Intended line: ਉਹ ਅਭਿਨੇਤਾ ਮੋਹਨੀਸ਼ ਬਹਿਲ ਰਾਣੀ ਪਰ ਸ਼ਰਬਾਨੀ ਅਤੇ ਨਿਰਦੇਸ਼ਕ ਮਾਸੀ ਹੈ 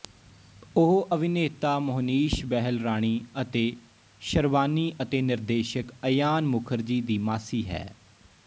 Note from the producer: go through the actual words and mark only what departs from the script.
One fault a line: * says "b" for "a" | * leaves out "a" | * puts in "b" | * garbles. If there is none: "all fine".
* says "ਅਤੇ" for "ਪਰ"
* puts in "ਅਯਾਨ ਮੁਖਰਜੀ ਦੀ"